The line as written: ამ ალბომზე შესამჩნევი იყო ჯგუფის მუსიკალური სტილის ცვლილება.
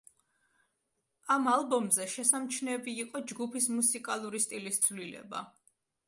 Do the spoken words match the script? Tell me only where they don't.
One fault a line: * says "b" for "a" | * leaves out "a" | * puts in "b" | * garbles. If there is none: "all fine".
all fine